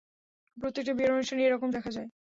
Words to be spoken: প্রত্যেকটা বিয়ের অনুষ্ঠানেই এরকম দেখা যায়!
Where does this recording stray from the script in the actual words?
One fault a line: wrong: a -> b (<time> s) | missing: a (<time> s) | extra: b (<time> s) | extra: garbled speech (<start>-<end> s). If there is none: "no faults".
no faults